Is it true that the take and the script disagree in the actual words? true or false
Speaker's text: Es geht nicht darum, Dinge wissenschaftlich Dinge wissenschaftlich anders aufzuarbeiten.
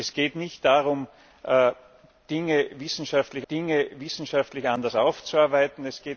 false